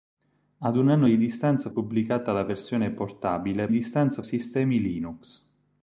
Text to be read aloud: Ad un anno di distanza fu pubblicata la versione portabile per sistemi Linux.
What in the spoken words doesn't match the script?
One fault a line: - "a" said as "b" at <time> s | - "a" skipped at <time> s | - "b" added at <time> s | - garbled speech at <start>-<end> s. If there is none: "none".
- "fu" skipped at 1.7 s
- "per" said as "distanza" at 3.7 s